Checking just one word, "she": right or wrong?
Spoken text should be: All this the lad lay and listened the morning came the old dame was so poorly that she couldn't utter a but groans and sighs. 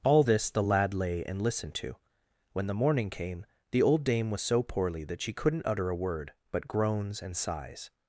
right